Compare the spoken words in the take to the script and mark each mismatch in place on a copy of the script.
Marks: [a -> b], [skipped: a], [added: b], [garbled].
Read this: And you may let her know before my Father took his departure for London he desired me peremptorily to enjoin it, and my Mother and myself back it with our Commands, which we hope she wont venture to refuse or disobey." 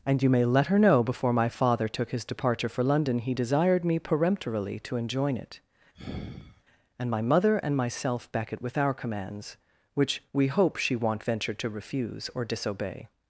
And you may let her know before my Father took his departure for London he desired me peremptorily to enjoin it, and my Mother and myself back it with our Commands, which we hope she wont venture to refuse or disobey."